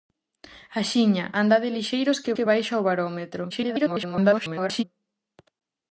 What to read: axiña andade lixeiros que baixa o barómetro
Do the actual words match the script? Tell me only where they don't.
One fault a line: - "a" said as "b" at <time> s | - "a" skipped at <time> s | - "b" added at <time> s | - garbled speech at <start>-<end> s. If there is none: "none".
- "que" added at 2.3 s
- garbled speech at 3.5-4.8 s